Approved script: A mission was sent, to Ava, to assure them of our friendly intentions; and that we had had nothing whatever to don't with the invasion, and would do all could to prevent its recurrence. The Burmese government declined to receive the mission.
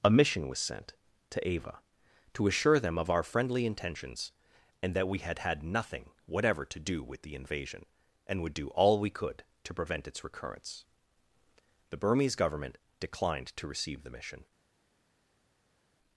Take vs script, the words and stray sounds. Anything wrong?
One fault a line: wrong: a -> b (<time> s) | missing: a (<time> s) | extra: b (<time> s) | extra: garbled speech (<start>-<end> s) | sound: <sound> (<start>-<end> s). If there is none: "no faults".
wrong: don't -> do (6.8 s)
extra: we (9.0 s)